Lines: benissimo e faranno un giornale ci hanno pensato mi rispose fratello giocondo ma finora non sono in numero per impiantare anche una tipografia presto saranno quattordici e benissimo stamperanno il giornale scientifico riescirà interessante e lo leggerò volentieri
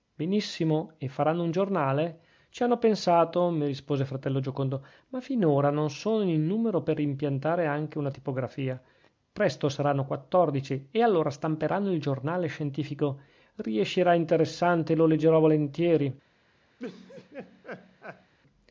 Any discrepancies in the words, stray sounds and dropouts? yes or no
yes